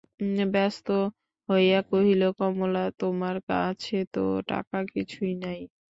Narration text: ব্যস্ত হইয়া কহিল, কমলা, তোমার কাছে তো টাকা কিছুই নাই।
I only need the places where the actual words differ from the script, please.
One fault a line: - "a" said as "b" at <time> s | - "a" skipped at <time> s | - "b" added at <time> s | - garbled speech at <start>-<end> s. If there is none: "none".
none